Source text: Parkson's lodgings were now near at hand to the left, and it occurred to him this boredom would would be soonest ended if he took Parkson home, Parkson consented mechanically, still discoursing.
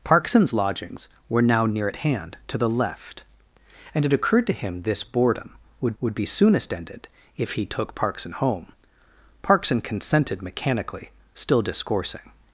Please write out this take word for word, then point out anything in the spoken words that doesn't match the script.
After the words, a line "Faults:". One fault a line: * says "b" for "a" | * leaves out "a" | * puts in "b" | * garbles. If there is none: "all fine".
Parkson's lodgings were now near at hand to the left, and it occurred to him this boredom would would be soonest ended if he took Parkson home, Parkson consented mechanically, still discoursing.
Faults:
all fine